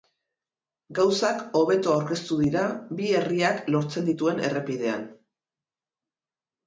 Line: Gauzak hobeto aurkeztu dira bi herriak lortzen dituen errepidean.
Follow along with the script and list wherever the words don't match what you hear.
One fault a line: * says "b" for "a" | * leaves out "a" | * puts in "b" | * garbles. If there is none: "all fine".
all fine